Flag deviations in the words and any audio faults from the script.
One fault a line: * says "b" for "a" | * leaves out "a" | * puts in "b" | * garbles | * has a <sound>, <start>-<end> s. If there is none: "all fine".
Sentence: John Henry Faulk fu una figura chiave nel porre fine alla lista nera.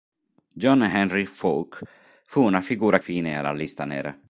* leaves out "chiave nel porre"